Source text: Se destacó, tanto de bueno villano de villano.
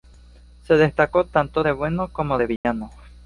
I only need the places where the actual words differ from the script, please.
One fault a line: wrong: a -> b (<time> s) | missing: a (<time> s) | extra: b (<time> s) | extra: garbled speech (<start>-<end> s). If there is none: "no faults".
wrong: villano -> como (2.1 s)